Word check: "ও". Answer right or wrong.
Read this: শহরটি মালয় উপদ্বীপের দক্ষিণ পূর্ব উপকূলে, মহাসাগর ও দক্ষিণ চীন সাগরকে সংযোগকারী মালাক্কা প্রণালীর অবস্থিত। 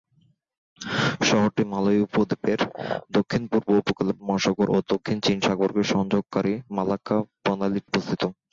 right